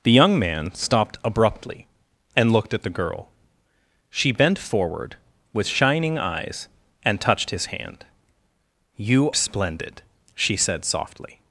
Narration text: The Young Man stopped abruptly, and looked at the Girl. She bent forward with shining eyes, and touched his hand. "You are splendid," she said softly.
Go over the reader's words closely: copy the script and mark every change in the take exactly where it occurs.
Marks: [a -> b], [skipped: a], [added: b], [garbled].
The Young Man stopped abruptly, and looked at the Girl. She bent forward with shining eyes, and touched his hand. "You [skipped: are] splendid," she said softly.